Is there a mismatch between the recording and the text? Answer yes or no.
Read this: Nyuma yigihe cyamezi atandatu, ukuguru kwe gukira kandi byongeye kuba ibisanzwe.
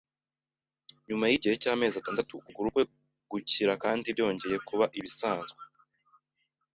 no